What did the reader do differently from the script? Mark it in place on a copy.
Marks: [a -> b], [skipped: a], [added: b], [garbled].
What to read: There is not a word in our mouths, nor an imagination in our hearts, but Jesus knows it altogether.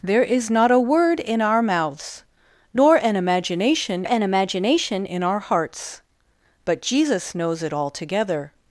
There is not a word in our mouths, nor an imagination [added: an imagination] in our hearts, but Jesus knows it altogether.